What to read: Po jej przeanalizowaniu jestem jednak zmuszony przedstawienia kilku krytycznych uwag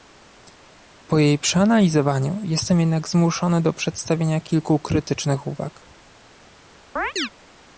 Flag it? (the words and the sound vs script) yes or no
yes